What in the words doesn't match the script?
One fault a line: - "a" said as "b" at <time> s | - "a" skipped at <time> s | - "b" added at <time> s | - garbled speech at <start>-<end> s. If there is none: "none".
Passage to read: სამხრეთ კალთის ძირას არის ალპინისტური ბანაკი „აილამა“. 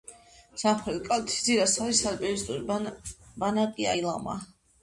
none